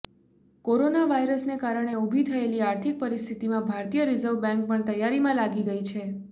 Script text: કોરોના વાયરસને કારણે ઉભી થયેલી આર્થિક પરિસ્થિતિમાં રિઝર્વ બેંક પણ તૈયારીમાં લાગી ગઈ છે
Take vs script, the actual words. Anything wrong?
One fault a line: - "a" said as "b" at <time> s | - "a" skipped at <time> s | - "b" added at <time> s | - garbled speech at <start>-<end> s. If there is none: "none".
- "ભારતીય" added at 3.7 s